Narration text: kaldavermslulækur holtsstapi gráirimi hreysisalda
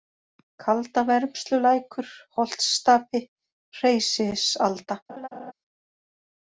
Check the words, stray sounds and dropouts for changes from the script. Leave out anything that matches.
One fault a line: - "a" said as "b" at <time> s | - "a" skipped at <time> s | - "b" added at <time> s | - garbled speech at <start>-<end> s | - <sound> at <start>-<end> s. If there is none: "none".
- "gráirimi" skipped at 3.2 s
- laugh at 5.1-5.5 s